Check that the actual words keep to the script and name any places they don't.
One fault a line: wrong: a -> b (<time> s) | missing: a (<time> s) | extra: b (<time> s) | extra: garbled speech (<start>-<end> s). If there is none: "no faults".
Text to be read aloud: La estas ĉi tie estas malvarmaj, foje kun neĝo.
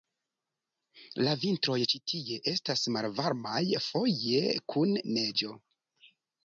wrong: estas -> vintroj (1.4 s)